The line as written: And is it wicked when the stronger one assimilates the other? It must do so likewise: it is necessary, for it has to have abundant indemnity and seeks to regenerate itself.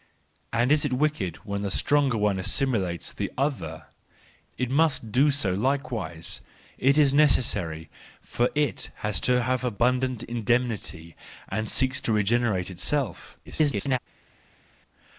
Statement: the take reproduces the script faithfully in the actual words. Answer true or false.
false